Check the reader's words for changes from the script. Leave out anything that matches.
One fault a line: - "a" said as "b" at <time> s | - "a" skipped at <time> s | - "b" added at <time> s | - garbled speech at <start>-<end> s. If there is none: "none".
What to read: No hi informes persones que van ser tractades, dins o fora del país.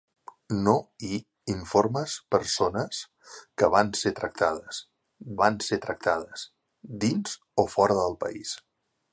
- "van ser tractades" added at 5.4 s